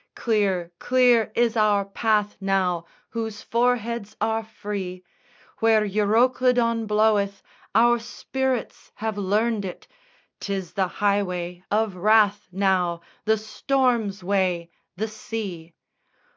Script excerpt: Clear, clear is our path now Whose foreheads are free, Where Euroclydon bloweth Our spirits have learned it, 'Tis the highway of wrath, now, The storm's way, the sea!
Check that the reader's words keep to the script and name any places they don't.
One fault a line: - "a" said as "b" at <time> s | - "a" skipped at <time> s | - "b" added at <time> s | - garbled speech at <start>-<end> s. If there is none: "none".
none